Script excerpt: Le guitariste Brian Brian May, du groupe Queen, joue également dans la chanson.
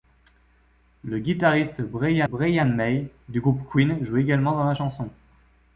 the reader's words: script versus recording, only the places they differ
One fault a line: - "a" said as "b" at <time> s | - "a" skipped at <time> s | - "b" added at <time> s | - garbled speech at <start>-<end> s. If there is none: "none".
none